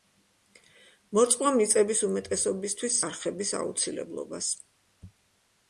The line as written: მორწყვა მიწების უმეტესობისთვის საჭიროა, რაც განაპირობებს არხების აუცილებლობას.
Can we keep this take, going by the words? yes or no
no